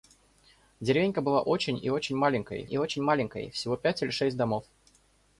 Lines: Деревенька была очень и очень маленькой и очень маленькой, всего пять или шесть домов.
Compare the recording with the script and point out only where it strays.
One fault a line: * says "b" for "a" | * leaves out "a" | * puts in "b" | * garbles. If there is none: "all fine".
all fine